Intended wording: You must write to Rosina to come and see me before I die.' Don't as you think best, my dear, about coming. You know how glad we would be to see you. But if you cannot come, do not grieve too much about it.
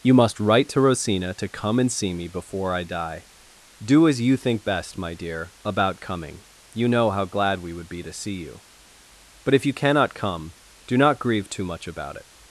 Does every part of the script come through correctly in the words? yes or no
no